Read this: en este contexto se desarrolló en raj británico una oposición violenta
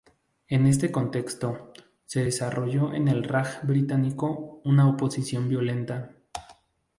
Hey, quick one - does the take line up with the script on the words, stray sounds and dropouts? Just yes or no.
no